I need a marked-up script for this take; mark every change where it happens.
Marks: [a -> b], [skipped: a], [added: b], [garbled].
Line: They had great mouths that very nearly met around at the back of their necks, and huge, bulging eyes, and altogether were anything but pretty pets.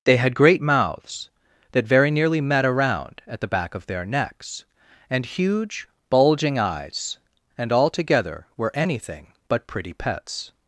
They had great mouths that very nearly met around at the back of their necks, and huge, bulging eyes, and altogether were anything but pretty pets.